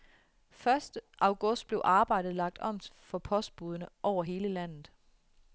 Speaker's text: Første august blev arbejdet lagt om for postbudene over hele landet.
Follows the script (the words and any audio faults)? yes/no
yes